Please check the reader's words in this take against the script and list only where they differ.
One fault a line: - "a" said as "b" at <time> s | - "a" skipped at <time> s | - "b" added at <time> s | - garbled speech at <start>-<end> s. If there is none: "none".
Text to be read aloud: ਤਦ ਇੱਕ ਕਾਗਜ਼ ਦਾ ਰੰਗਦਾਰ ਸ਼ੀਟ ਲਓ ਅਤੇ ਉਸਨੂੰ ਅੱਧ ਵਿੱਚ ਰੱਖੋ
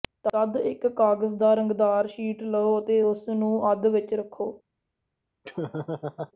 none